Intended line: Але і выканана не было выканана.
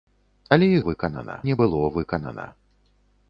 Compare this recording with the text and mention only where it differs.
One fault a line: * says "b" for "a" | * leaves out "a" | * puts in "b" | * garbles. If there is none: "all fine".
all fine